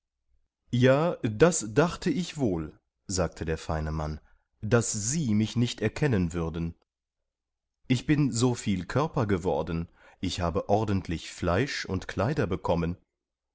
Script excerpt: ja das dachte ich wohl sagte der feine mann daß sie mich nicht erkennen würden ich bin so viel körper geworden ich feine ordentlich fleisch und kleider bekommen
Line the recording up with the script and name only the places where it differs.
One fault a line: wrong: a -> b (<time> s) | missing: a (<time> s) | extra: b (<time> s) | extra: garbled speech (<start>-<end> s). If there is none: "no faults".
wrong: feine -> habe (10.4 s)